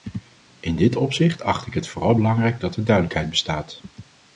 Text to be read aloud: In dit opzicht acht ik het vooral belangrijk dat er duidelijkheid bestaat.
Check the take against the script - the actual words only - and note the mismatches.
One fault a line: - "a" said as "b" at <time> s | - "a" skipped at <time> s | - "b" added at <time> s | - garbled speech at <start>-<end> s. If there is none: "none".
none